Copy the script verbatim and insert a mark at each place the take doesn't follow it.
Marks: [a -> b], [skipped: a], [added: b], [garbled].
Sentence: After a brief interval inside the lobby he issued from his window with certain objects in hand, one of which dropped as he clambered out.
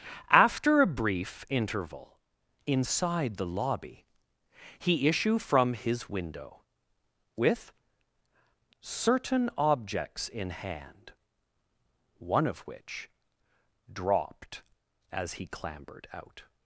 After a brief interval inside the lobby he [issued -> issue] from his window with certain objects in hand, one of which dropped as he clambered out.